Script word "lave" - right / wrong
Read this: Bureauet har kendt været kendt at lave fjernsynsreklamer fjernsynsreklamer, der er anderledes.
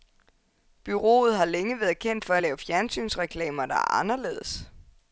right